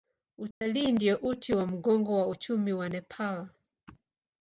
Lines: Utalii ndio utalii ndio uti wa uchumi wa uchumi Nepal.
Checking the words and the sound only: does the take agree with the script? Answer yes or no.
no